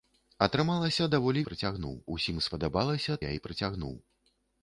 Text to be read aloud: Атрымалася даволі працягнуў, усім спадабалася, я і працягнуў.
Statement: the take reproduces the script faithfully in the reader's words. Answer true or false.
true